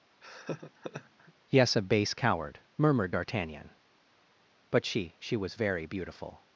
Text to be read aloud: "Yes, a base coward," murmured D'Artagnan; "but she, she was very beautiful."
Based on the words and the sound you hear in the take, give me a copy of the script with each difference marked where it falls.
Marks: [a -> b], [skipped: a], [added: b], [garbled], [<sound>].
[laugh] "Yes, a base coward," murmured D'Artagnan; "but she, she was very beautiful."